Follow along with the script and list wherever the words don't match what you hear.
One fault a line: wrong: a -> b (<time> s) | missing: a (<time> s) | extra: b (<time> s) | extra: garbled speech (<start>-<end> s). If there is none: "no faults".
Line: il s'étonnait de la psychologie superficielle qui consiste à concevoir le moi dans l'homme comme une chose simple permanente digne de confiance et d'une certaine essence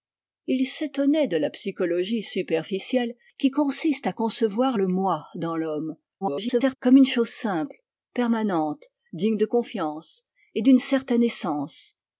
extra: garbled speech (6.2-6.8 s)